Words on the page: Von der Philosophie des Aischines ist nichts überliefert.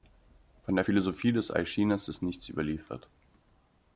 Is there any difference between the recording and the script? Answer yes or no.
no